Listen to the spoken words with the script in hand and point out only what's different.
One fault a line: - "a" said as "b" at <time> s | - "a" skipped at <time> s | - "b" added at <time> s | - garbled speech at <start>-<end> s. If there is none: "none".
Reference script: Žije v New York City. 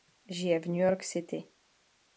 none